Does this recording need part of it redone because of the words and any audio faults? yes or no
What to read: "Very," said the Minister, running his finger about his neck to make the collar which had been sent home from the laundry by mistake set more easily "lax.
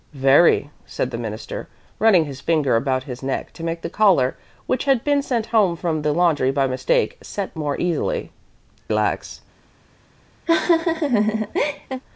yes